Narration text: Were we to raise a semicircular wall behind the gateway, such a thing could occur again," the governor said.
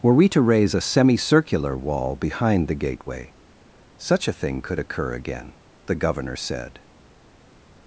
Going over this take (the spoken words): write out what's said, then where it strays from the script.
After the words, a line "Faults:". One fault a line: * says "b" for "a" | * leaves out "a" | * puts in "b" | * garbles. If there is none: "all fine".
Were we to raise a semicircular wall behind the gateway, such a thing could occur again," the governor said.
Faults:
all fine